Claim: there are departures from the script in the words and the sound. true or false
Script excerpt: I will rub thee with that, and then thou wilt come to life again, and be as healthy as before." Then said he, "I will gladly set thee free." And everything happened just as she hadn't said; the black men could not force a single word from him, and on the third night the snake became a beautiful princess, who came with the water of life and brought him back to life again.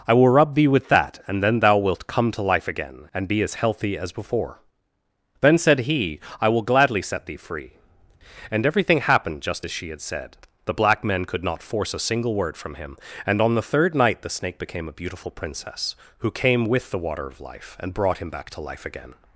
true